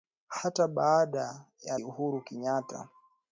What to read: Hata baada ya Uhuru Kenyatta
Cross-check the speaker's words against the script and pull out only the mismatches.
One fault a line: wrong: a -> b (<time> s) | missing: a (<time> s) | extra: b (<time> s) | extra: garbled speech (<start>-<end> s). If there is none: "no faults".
no faults